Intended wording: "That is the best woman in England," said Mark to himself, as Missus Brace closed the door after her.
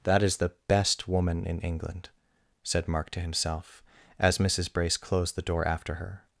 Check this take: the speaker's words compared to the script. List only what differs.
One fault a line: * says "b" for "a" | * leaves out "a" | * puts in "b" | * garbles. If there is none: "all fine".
all fine